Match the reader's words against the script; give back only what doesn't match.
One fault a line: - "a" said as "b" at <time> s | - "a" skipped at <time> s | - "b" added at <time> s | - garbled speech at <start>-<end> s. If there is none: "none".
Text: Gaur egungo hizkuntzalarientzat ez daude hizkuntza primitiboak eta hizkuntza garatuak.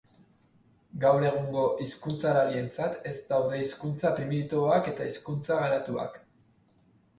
none